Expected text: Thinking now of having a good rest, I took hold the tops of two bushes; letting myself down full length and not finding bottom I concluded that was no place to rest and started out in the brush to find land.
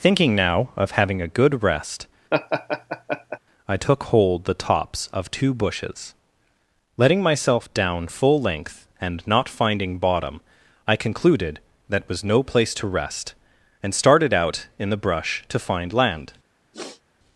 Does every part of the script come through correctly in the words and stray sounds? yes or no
no